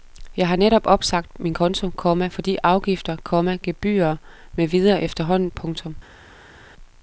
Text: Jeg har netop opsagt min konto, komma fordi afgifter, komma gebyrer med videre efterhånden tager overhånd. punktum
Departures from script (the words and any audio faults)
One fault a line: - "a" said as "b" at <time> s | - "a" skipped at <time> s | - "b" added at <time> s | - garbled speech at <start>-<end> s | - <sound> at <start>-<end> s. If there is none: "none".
- "tager overhånd" skipped at 5.5 s